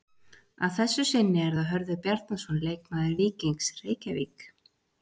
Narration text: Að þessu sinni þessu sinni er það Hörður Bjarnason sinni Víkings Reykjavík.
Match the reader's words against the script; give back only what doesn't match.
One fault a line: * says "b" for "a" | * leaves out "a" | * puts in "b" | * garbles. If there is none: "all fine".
* leaves out "þessu sinni"
* says "leikmaður" for "sinni"